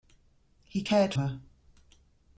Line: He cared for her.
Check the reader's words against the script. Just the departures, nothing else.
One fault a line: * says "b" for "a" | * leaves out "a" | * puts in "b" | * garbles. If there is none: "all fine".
* leaves out "for"